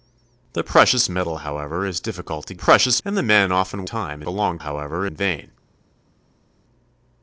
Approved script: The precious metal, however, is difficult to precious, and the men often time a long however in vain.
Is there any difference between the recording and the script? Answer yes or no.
no